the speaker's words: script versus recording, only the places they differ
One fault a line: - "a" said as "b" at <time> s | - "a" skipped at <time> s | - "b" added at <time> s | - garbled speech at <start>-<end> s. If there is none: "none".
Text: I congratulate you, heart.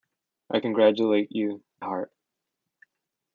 none